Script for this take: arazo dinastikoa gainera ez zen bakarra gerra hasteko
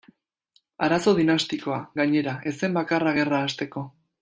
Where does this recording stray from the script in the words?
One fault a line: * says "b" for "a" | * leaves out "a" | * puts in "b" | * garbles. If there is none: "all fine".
all fine